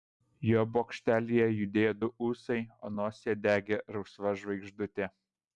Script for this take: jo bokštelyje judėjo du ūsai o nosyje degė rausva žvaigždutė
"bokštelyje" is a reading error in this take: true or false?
false